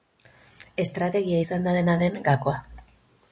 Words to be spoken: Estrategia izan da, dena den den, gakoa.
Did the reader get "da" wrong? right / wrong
right